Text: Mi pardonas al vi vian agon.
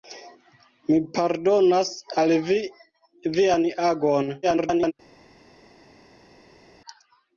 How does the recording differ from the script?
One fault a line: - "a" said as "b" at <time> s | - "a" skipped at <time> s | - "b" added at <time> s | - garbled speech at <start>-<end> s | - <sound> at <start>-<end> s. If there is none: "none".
- garbled speech at 4.4-4.9 s